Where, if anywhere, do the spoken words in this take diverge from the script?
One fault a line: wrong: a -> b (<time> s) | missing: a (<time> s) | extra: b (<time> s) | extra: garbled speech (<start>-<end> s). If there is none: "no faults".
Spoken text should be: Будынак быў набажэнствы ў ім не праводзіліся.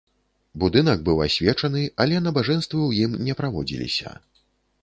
extra: асвечаны але (1.2 s)